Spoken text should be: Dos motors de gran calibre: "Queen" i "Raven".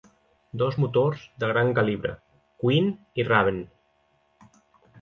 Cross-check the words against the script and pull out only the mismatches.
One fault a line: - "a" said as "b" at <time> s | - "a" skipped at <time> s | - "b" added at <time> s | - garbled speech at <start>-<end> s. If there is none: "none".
none